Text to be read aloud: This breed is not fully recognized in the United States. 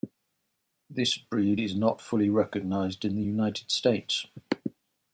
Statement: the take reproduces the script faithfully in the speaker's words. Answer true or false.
true